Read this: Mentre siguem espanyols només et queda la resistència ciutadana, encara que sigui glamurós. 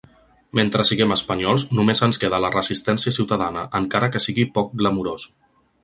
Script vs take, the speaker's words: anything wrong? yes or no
yes